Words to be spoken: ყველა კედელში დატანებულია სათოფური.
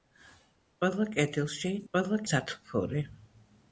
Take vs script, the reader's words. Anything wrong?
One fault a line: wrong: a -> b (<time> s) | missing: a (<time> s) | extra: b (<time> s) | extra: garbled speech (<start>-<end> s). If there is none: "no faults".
wrong: დატანებულია -> ყველა (1.9 s)